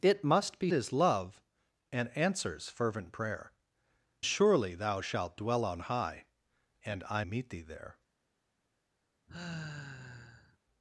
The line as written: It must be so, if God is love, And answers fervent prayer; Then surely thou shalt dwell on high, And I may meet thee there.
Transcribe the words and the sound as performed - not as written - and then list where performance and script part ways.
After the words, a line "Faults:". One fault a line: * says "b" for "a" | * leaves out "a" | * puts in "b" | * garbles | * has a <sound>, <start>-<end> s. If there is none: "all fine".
It must be is love, And answers fervent prayer; Surely thou shalt dwell on high, And I meet thee there.
Faults:
* leaves out "so if God"
* leaves out "Then"
* leaves out "may"
* has a sigh, 9.3-10.6 s